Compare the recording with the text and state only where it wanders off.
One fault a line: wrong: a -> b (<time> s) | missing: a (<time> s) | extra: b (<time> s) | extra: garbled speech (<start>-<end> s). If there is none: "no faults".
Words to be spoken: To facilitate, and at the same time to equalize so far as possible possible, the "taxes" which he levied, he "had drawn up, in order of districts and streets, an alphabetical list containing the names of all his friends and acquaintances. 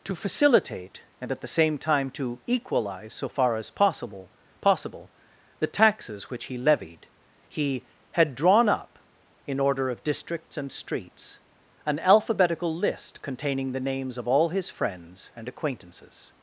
no faults